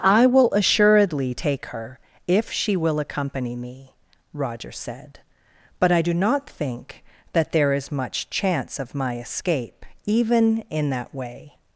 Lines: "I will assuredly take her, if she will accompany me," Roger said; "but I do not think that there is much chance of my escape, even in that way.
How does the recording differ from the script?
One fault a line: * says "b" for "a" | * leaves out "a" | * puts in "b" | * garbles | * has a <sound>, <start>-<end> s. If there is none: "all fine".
all fine